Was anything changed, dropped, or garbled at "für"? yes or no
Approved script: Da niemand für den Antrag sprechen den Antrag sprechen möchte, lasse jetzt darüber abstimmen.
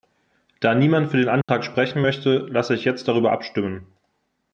no